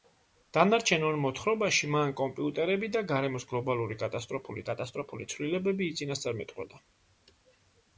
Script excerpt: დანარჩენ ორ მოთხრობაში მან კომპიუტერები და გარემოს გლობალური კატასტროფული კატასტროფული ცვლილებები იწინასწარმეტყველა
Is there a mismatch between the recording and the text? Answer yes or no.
no